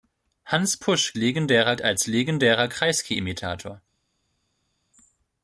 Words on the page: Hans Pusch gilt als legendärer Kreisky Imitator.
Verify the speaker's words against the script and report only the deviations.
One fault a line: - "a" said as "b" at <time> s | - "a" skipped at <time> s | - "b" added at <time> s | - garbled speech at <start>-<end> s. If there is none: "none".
- "gilt" said as "legendärer" at 1.1 s